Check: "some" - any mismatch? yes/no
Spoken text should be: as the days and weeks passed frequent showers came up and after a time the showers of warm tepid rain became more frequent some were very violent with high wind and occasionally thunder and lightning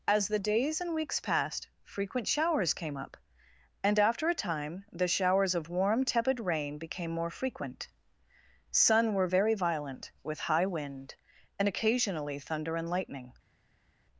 yes